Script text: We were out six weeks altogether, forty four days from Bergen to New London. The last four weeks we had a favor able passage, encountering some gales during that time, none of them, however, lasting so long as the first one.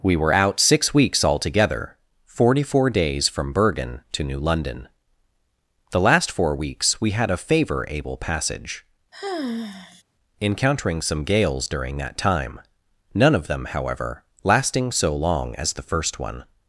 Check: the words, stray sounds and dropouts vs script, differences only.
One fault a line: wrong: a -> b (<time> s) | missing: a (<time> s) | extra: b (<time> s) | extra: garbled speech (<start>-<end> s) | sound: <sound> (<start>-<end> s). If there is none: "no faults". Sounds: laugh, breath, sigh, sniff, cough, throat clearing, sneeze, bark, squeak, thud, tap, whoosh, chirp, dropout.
sound: sigh (9.1-10.0 s)